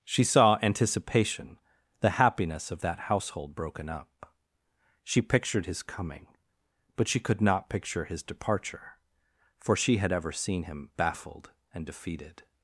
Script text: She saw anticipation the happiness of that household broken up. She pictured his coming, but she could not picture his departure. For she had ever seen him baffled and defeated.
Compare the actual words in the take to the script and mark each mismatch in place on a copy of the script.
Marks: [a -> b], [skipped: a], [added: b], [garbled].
She saw anticipation the happiness of that household broken up. She pictured his coming, but she could not picture his departure. For she had ever seen him baffled and defeated.